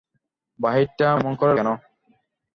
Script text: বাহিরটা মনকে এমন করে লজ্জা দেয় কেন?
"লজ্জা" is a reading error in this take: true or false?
true